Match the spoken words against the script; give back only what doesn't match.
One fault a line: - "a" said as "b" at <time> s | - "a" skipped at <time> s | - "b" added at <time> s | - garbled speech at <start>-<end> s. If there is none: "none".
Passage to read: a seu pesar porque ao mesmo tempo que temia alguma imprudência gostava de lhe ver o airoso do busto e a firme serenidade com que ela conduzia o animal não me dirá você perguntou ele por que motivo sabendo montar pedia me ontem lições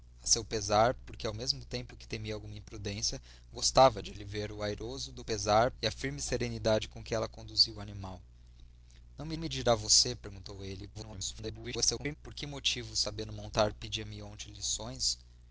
- "busto" said as "pesar" at 5.2 s
- "me" added at 9.4 s
- garbled speech at 10.9-12.2 s